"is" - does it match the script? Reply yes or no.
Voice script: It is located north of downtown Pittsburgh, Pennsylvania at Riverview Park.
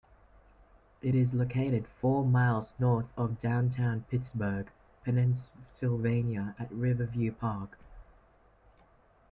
yes